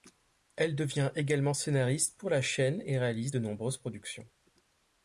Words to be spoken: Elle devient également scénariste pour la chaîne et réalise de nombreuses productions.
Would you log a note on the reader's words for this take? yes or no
no